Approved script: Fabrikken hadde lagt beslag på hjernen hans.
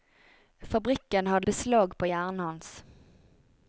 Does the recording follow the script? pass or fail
fail